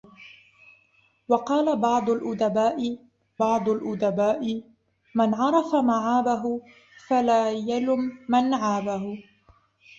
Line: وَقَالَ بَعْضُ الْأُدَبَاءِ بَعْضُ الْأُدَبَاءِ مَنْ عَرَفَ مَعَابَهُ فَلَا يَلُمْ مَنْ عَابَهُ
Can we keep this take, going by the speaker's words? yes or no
yes